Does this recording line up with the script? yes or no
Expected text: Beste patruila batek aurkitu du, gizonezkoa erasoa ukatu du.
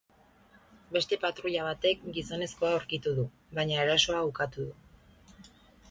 no